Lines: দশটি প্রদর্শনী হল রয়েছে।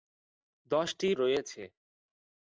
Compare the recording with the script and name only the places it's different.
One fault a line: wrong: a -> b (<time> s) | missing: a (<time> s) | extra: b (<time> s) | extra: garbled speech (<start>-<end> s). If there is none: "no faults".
missing: প্রদর্শনী হল (1.1 s)